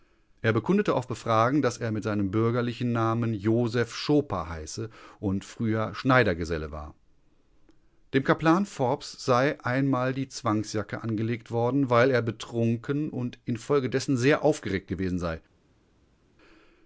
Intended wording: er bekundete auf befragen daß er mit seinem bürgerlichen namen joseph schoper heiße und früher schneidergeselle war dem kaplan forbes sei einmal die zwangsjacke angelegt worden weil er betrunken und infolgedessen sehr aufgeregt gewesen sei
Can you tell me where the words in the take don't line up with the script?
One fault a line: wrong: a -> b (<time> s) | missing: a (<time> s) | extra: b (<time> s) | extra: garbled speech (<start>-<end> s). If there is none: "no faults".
no faults